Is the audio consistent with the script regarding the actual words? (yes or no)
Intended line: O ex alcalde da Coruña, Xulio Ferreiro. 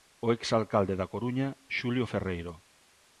yes